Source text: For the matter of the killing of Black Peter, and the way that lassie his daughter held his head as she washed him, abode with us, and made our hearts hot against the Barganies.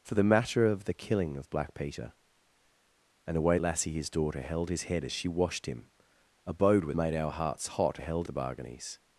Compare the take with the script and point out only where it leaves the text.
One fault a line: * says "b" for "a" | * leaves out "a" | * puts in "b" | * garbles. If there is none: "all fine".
* leaves out "that"
* leaves out "us and"
* says "held" for "against"